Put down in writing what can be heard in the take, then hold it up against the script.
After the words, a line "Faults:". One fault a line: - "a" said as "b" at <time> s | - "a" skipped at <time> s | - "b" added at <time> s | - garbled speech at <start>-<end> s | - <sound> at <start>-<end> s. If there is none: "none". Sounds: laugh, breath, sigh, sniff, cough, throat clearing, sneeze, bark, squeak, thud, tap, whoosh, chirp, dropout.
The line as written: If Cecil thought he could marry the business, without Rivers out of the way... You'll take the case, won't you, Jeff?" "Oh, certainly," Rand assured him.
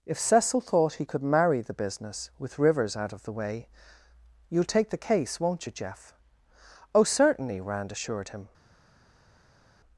If Cecil thought he could marry the business, with Rivers out of the way... You'll take the case, won't you, Jeff?" "Oh, certainly," Rand assured him.
Faults:
- "without" said as "with" at 2.4 s